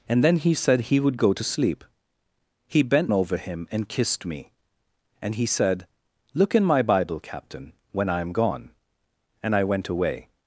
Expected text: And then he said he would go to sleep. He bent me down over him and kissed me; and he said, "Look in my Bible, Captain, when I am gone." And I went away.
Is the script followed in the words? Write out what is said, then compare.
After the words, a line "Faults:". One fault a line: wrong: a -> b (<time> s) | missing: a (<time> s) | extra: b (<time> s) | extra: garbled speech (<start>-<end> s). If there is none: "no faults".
And then he said he would go to sleep. He bent over him and kissed me; and he said, "Look in my Bible, Captain, when I am gone." And I went away.
Faults:
missing: me down (3.1 s)